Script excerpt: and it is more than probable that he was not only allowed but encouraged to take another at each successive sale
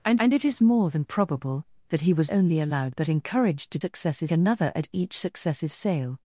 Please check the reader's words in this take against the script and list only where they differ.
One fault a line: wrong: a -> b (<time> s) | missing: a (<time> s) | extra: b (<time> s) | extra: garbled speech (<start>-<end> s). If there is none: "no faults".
extra: and (0.2 s)
missing: not (2.3 s)
wrong: take -> successive (3.8 s)